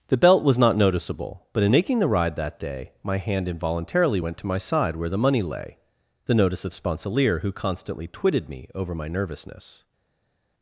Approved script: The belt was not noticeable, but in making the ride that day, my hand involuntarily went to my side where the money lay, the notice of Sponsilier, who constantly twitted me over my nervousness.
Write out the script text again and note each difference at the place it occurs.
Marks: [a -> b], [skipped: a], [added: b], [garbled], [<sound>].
The belt was not noticeable, but in making the ride that day, my hand involuntarily went to my side where the money lay, the notice of Sponsilier, who constantly twitted me over my nervousness.